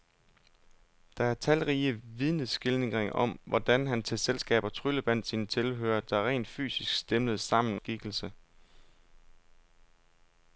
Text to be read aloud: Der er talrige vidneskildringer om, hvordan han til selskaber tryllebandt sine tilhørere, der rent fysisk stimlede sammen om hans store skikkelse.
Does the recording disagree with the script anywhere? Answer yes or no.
yes